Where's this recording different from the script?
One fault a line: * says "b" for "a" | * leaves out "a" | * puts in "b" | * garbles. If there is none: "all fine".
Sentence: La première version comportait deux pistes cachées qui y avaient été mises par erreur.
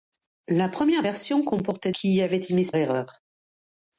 * leaves out "deux pistes cachées"
* leaves out "par"